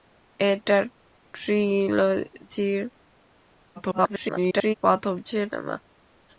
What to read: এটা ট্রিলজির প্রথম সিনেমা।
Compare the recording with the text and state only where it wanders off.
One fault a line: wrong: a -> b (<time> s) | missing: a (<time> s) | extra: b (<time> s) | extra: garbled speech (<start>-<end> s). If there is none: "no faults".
extra: garbled speech (3.8-4.7 s)